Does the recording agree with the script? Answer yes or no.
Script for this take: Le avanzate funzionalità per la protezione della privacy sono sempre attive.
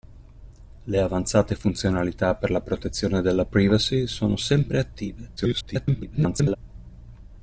no